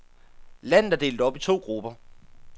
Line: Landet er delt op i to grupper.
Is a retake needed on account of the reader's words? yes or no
no